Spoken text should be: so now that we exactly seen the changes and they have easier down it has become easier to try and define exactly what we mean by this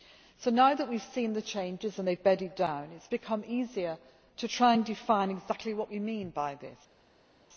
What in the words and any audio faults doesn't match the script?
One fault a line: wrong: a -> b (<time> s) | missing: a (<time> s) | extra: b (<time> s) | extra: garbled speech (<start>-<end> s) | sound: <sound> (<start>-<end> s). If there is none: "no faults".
wrong: exactly -> have (1.0 s)
wrong: easier -> bedded (2.2 s)